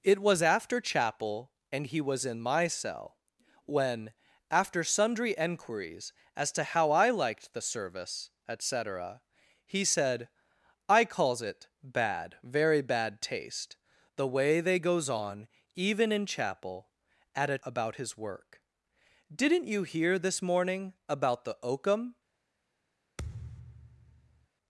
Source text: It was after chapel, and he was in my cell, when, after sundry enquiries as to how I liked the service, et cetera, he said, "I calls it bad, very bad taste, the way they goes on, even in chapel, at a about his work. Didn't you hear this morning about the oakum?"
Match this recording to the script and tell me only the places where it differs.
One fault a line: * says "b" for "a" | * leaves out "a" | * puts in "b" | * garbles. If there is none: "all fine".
all fine